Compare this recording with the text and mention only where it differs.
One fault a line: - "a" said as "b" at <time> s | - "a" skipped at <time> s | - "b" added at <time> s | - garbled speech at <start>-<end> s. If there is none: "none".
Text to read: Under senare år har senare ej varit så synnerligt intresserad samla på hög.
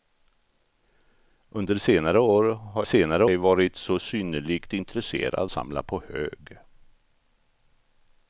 none